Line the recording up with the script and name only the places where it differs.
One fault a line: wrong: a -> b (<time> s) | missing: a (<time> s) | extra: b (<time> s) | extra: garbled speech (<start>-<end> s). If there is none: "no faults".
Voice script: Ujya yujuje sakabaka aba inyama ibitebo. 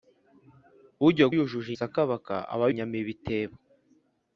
no faults